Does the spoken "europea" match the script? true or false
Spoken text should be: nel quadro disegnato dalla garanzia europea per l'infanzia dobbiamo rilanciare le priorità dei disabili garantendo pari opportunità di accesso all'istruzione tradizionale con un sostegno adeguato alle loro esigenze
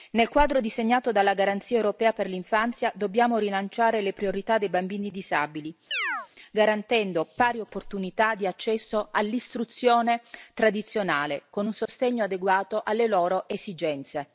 true